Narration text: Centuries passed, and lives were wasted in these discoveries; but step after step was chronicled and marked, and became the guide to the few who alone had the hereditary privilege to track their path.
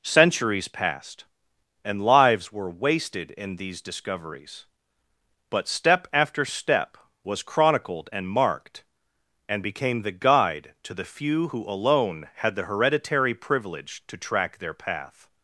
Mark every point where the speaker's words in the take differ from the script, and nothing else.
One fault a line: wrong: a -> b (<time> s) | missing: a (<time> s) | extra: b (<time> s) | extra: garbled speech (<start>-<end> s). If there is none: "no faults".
no faults